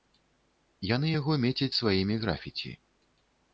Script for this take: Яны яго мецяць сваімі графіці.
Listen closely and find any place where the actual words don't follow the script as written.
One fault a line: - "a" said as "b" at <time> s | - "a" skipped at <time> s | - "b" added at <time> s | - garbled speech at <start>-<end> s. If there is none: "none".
none